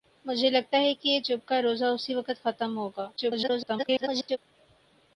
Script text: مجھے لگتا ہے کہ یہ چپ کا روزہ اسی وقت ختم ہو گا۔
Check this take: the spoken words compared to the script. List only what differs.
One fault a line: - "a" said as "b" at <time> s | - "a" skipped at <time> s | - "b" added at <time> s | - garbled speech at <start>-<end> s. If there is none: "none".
- garbled speech at 3.2-4.4 s